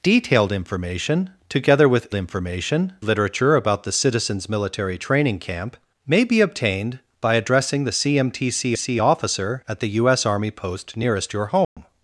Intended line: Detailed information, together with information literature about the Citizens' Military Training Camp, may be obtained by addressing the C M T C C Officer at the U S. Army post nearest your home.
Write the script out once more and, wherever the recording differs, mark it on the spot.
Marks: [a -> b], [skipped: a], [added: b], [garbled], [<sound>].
Detailed information, together with information literature about the Citizens' Military Training Camp, may be obtained by addressing the C M T C C Officer at the U S. Army post nearest your home. [dropout]